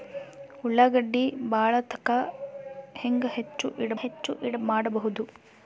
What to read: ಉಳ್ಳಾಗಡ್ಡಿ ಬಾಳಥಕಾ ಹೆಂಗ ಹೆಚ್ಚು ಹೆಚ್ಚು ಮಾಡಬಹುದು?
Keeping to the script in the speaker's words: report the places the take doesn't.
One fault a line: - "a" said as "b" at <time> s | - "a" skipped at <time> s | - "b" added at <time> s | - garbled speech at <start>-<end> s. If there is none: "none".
none